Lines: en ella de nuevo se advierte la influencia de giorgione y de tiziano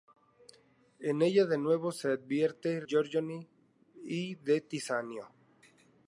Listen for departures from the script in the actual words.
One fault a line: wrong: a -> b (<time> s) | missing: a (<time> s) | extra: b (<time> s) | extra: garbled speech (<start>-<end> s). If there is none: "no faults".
missing: la influencia de (2.8 s)